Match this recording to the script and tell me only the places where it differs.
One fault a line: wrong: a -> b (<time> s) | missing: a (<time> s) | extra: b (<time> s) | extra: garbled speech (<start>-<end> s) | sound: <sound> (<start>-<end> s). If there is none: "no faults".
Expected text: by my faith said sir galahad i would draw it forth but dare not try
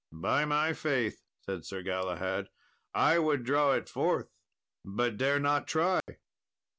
sound: dropout (6.0-6.1 s)